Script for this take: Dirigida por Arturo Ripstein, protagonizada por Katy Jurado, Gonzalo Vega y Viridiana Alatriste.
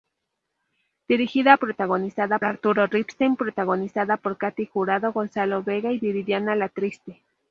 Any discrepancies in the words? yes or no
yes